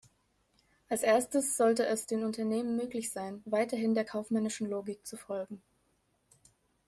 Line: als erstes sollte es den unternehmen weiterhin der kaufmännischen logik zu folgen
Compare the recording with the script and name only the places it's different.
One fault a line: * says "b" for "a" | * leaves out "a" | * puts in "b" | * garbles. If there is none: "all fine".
* puts in "möglich sein"